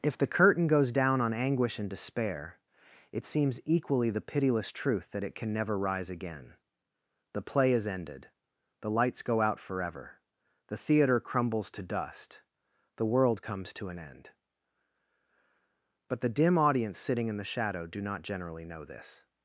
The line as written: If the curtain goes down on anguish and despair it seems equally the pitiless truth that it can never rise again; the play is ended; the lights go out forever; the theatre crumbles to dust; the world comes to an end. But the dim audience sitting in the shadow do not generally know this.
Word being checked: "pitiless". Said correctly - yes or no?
yes